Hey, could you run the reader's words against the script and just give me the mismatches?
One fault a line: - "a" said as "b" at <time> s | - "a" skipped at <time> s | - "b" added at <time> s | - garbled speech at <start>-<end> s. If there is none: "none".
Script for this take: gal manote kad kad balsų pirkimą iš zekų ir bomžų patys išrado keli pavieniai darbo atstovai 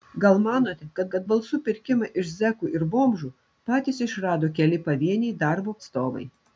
none